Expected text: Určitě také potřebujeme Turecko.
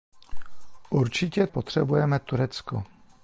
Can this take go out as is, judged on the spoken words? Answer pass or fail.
fail